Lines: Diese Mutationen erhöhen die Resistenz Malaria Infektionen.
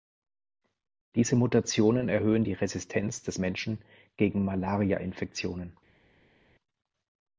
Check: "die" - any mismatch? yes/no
no